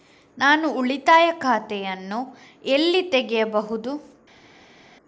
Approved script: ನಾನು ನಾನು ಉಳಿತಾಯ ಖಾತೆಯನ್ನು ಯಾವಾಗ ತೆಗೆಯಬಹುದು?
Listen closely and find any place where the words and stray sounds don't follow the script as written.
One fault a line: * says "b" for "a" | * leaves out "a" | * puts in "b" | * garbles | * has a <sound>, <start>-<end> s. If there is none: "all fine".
* leaves out "ನಾನು"
* says "ಎಲ್ಲಿ" for "ಯಾವಾಗ"